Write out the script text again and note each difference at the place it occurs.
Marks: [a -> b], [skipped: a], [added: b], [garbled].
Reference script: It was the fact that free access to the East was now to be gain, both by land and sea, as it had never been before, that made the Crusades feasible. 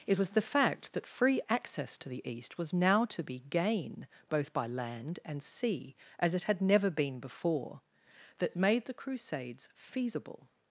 It was the fact that free access to the East was now to be gain, both by land and sea, as it had never been before, that made the Crusades feasible.